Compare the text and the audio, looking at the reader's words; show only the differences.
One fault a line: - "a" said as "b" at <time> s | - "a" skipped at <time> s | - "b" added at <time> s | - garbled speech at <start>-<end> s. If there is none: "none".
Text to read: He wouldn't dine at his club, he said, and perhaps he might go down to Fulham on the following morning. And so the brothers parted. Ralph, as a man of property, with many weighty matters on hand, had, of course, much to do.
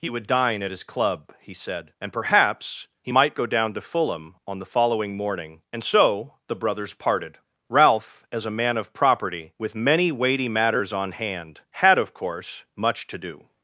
- "wouldn't" said as "would" at 0.1 s